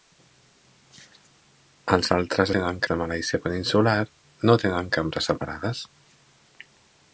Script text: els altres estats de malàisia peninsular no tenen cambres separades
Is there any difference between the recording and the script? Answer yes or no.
yes